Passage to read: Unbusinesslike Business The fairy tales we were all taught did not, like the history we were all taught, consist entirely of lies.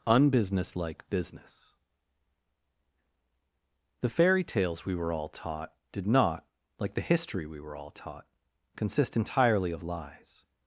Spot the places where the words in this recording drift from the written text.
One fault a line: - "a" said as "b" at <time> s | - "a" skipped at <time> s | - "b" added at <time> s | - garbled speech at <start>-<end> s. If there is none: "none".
none